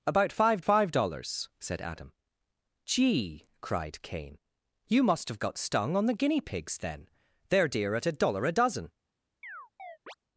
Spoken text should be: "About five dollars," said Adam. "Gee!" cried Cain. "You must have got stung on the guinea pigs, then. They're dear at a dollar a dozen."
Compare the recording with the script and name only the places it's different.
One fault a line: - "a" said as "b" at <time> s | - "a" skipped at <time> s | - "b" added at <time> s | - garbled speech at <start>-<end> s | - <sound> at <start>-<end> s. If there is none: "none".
- "five" added at 0.6 s
- chirp at 9.4-10.1 s